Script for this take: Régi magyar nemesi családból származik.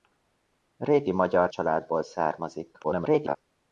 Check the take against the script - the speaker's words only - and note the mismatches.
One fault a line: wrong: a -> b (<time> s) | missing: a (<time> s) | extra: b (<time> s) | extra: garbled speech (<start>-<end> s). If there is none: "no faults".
missing: nemesi (1.5 s)
extra: garbled speech (2.8-3.4 s)